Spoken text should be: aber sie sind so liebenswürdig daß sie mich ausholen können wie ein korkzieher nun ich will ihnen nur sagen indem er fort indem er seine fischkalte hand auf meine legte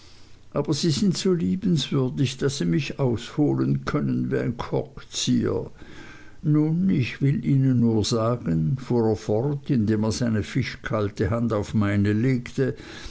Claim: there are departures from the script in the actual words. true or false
true